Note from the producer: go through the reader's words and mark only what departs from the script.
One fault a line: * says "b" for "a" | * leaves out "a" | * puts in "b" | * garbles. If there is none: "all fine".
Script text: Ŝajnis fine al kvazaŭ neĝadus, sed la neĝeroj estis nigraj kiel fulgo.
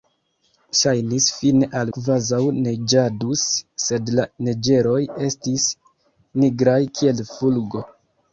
all fine